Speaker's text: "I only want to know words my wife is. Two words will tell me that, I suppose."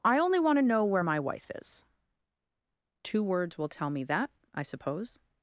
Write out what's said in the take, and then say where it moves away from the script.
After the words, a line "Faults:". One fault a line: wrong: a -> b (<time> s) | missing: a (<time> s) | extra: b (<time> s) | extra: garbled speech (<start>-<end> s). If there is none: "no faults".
"I only want to know where my wife is. Two words will tell me that, I suppose."
Faults:
wrong: words -> where (0.8 s)